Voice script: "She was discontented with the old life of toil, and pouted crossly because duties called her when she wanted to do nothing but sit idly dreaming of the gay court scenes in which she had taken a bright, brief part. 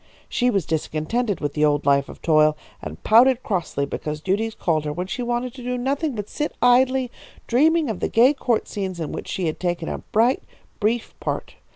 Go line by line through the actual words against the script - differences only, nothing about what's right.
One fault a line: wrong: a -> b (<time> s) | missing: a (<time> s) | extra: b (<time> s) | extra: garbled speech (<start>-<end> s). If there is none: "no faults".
no faults